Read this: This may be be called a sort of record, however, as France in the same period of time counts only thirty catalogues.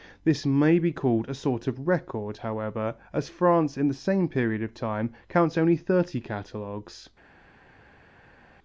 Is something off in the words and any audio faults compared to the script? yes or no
yes